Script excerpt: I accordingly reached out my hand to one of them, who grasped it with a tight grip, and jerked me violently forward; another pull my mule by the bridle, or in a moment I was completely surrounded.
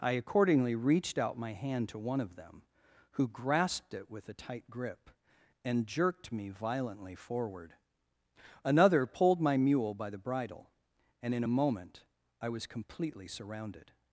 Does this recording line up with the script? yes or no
no